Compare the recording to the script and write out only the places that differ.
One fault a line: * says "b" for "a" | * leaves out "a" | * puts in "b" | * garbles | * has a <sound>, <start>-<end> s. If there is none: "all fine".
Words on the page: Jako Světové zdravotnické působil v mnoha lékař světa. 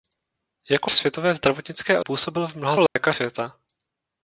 * has a dropout, 2.9-3.0 s